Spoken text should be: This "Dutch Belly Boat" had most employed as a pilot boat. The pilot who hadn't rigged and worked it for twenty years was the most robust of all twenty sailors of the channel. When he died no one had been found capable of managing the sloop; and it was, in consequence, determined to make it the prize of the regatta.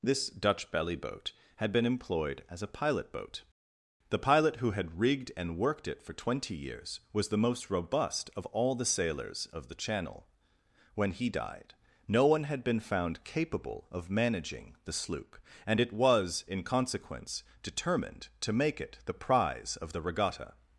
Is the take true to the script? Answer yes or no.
no